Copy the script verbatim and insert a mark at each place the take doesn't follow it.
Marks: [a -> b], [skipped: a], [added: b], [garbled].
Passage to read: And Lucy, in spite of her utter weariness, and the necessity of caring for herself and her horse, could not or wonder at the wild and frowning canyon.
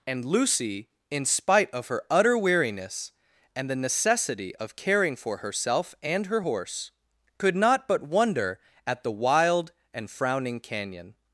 And Lucy, in spite of her utter weariness, and the necessity of caring for herself and her horse, could not [or -> but] wonder at the wild and frowning canyon.